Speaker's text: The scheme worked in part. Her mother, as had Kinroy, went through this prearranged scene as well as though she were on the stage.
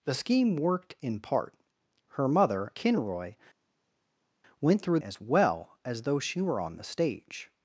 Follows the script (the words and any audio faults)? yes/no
no